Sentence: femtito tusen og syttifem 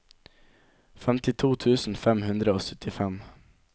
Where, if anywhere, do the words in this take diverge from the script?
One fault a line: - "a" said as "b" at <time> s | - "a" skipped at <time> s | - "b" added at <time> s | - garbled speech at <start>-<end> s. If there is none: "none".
- "fem hundre" added at 2.1 s